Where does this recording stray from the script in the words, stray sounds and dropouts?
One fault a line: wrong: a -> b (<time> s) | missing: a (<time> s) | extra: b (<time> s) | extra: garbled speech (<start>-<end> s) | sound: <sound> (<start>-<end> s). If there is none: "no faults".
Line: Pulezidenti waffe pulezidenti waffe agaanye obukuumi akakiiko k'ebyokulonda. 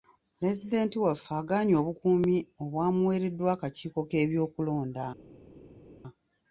missing: pulezidenti waffe (1.3 s)
extra: obwamuweereddwa (2.6 s)